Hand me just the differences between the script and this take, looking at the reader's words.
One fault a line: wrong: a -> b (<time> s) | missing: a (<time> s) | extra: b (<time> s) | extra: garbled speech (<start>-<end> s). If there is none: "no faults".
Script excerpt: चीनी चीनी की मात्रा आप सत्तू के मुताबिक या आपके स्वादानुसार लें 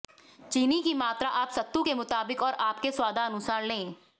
missing: चीनी (0.8 s)
wrong: या -> और (2.4 s)